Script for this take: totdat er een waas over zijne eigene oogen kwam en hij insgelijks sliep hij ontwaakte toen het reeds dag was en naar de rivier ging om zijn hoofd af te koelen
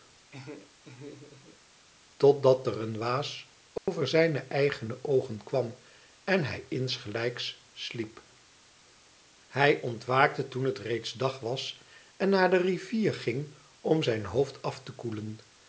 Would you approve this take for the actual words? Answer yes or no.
yes